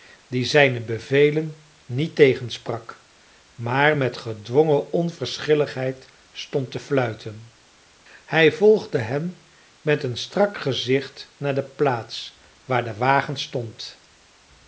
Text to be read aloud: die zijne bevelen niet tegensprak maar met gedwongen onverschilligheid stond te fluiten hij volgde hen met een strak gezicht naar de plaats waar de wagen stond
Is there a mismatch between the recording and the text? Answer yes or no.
no